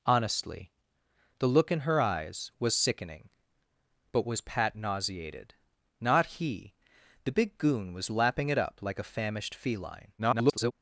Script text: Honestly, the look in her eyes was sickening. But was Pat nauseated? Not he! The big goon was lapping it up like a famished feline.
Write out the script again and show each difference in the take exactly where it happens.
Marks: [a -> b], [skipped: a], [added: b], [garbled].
Honestly, the look in her eyes was sickening. But was Pat nauseated? Not he! The big goon was lapping it up like a famished feline. [garbled]